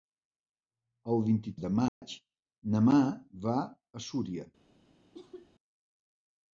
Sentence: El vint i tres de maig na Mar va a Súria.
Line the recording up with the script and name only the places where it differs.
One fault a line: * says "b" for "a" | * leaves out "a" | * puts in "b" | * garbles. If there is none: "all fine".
* leaves out "tres"